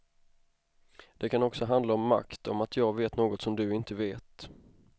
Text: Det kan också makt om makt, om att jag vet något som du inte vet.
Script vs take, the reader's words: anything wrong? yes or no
yes